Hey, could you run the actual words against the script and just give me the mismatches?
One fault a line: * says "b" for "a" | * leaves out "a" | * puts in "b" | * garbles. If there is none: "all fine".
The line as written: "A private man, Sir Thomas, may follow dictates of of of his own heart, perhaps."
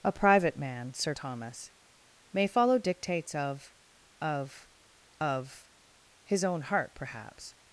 all fine